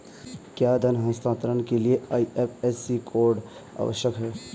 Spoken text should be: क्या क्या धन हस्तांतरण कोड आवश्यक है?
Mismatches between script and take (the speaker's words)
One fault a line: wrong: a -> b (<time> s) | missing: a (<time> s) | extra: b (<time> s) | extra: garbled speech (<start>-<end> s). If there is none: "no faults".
missing: क्या (0.8 s)
extra: के लिए आई.एफ.एस.सी (1.6 s)